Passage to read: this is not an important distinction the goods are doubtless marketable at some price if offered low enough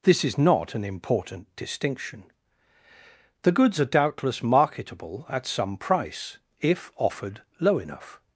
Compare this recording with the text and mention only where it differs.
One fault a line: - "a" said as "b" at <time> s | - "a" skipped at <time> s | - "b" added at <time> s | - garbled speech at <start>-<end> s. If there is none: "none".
none